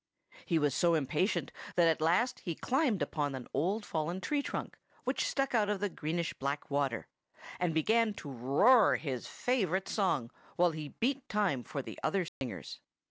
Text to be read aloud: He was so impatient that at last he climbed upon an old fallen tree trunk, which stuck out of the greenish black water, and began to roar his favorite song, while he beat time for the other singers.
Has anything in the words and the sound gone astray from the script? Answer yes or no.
yes